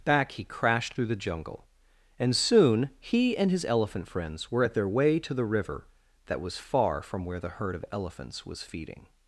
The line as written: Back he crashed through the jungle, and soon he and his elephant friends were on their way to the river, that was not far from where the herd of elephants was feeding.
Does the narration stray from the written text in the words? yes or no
yes